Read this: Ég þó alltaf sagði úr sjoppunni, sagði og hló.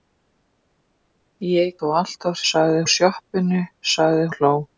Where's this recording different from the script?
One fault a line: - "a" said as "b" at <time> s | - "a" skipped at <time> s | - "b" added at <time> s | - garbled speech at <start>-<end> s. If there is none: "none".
none